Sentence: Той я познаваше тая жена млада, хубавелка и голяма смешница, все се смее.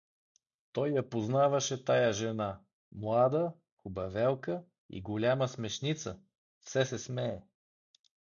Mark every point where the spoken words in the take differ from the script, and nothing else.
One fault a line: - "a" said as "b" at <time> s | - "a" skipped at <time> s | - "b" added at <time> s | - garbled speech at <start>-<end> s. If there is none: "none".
none